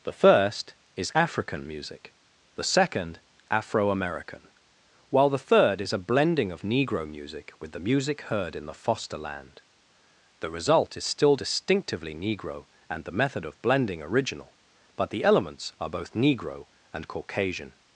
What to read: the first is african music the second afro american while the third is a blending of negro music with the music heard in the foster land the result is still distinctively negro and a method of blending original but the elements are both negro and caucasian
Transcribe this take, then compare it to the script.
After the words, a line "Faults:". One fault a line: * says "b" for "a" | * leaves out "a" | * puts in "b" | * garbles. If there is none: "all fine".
the first is african music the second afro american while the third is a blending of negro music with the music heard in the foster land the result is still distinctively negro and the method of blending original but the elements are both negro and caucasian
Faults:
* says "the" for "a"